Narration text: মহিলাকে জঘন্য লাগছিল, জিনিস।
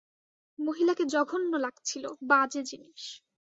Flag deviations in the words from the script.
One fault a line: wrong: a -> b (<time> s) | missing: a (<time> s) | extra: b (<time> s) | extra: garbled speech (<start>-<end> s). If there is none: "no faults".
extra: বাজে (2.2 s)